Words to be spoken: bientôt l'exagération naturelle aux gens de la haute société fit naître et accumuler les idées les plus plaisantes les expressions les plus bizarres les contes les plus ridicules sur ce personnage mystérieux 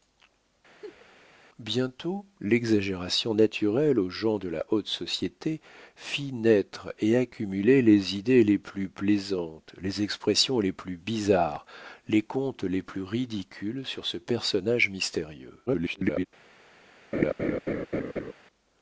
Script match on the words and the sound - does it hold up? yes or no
no